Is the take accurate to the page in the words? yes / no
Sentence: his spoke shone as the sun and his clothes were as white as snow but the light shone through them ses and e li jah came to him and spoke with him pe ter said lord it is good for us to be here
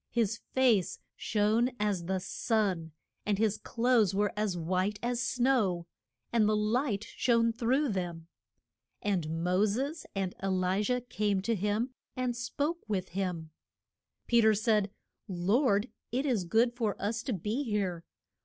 no